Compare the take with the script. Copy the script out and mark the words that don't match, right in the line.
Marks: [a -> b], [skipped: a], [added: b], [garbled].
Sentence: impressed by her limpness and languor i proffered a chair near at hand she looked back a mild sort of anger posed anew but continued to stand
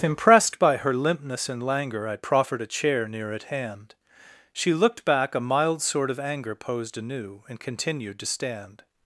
impressed by her limpness and languor i proffered a chair near at hand she looked back a mild sort of anger posed anew [but -> and] continued to stand